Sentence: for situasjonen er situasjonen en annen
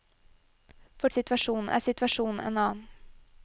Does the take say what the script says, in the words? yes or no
yes